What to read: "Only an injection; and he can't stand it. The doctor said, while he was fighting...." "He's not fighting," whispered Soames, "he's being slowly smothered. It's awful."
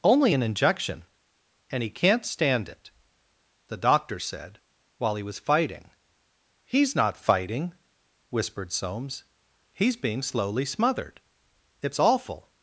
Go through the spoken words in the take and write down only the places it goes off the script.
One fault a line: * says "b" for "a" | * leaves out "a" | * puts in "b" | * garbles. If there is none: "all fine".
all fine